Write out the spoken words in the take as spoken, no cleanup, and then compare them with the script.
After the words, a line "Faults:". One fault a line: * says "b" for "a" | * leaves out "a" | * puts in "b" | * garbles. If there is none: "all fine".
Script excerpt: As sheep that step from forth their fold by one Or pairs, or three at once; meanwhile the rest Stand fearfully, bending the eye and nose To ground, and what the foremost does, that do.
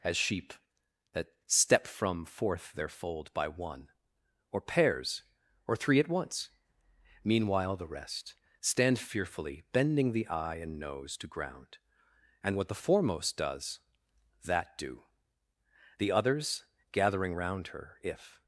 As sheep that step from forth their fold by one Or pairs, or three at once; meanwhile the rest Stand fearfully, bending the eye and nose To ground, and what the foremost does, that do. The others, gathering round her if
Faults:
* puts in "The others gathering round her if"